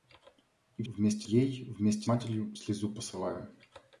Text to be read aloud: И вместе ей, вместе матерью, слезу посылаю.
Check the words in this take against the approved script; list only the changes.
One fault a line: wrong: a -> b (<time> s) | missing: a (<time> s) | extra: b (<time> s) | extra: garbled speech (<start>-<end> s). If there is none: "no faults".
no faults